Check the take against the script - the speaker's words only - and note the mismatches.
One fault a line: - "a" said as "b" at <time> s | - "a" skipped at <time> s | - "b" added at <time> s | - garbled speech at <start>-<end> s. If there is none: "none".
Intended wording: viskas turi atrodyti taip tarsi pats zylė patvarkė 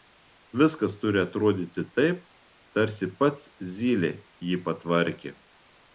- "jį" added at 4.5 s